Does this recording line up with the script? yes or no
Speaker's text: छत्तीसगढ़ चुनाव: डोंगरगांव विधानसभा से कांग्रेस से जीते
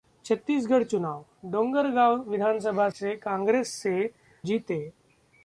yes